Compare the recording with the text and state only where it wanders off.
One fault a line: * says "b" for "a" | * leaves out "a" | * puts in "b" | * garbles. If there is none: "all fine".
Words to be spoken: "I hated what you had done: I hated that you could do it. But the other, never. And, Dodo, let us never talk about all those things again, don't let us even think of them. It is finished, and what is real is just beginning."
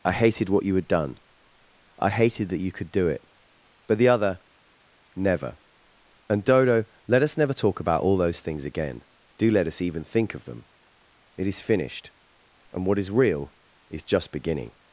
* says "do" for "don't"